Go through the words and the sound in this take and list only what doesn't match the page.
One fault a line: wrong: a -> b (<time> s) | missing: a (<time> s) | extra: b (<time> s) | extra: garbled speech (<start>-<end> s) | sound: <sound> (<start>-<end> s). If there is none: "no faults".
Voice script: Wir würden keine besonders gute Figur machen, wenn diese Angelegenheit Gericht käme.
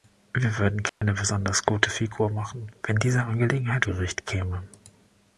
sound: dropout (0.9-1.0 s)